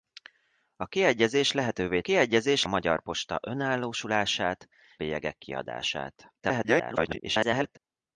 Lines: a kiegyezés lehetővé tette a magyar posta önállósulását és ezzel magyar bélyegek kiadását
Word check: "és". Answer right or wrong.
wrong